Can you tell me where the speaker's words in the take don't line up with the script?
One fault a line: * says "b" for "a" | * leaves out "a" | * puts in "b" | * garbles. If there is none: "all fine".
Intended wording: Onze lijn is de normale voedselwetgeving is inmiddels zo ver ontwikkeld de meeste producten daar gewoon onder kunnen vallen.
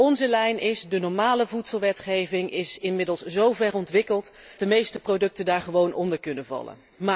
all fine